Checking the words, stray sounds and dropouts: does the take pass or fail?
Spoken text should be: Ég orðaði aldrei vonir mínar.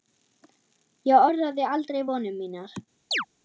fail